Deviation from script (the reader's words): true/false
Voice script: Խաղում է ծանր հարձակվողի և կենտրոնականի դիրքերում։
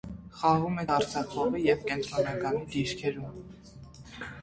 true